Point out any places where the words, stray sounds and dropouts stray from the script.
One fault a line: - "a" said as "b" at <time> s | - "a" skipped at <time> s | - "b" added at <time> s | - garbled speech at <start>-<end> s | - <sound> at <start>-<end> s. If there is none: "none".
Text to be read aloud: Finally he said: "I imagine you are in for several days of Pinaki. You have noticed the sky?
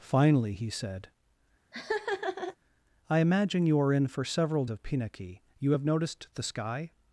- laugh at 1.7-2.6 s
- "days" skipped at 4.6 s